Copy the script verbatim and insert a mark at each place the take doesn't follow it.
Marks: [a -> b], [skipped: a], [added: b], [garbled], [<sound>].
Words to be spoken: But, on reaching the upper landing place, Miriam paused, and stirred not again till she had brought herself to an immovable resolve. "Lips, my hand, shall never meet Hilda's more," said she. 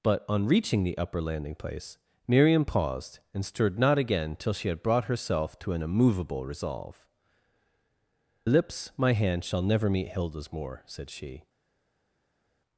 But, on reaching the upper landing place, Miriam paused, and stirred not again till she had brought herself to an immovable resolve. "Lips, my hand, shall never meet Hilda's more," said she.